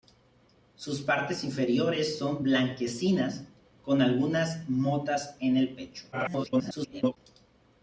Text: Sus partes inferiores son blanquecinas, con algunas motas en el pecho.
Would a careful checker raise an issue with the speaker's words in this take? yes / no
yes